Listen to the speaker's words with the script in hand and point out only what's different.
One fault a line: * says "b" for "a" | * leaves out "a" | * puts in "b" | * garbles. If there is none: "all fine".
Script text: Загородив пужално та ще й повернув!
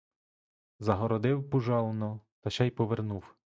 all fine